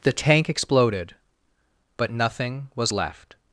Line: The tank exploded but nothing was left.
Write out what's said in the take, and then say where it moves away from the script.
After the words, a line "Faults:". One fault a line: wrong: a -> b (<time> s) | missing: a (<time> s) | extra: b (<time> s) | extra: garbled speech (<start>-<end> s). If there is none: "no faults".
The tank exploded but nothing was left.
Faults:
no faults